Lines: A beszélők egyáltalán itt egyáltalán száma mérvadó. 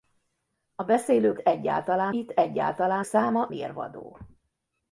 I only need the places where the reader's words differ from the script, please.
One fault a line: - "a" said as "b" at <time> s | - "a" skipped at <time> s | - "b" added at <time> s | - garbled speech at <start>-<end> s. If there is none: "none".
none